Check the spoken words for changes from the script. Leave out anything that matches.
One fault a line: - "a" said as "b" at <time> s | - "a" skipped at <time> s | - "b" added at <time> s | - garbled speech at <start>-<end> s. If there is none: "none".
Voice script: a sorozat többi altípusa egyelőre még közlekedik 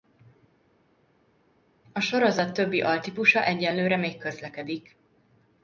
none